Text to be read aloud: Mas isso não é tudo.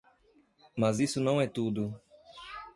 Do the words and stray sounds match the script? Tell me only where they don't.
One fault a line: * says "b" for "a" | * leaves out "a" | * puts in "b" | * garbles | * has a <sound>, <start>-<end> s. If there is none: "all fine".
all fine